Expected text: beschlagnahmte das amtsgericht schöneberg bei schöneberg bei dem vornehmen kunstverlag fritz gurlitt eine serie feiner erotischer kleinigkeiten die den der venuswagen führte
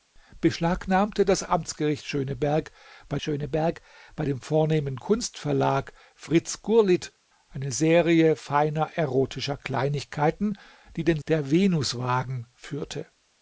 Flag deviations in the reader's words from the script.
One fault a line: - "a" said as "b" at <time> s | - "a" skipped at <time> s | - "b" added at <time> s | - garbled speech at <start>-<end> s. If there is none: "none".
none